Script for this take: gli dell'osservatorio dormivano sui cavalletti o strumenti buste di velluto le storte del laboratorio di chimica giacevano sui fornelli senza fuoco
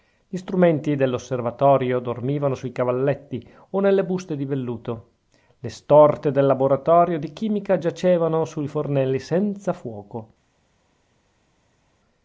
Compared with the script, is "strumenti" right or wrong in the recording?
wrong